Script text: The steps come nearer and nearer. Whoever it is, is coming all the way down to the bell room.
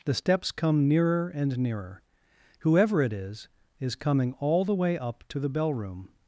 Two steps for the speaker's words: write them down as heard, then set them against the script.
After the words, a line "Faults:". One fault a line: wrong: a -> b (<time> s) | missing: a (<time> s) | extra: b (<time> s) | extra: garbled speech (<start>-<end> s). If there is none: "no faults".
The steps come nearer and nearer. Whoever it is, is coming all the way up to the bell room.
Faults:
wrong: down -> up (5.0 s)